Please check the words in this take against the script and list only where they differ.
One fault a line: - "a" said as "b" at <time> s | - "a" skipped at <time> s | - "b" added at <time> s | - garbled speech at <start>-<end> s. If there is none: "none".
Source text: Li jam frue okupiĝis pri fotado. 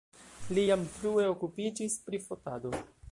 none